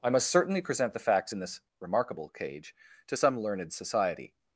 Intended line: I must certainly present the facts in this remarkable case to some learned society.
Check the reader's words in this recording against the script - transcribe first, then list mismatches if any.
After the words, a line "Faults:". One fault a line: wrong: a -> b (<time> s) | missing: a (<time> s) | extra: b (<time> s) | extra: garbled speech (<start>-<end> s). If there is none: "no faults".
I must certainly present the facts in this remarkable cage to some learned society.
Faults:
wrong: case -> cage (2.3 s)